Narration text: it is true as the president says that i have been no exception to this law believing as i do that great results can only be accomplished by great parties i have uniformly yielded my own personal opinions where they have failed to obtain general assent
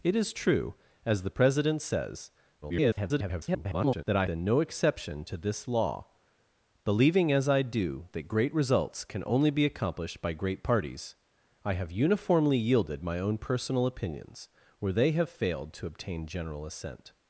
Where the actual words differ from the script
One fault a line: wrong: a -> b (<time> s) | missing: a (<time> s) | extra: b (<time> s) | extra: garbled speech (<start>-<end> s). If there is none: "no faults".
extra: garbled speech (2.6-4.0 s)
missing: have (4.3 s)